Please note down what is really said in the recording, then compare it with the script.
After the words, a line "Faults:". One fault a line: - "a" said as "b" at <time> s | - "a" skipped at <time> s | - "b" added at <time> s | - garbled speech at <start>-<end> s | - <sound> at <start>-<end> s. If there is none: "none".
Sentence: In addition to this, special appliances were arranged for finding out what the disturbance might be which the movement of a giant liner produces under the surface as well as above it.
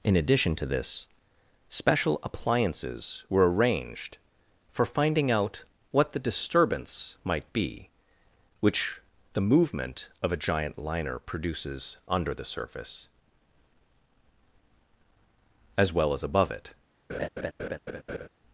In addition to this, special appliances were arranged for finding out what the disturbance might be which the movement of a giant liner produces under the surface as well as above it.
Faults:
- laugh at 17.1-18.3 s